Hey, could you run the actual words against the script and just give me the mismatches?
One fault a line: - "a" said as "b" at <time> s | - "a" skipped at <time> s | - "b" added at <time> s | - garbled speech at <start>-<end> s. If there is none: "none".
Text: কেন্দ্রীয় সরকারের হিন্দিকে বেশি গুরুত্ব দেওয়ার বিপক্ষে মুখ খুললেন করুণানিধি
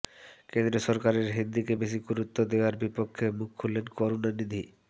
none